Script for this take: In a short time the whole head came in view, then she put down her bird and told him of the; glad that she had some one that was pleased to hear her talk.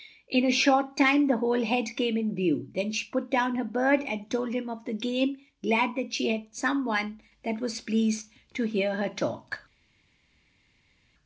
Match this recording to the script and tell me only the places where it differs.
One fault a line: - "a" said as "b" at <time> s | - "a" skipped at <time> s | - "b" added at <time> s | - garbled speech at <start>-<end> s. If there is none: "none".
- "game" added at 4.9 s